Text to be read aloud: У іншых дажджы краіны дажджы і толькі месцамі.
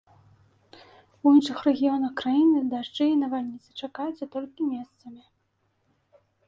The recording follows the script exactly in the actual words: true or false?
false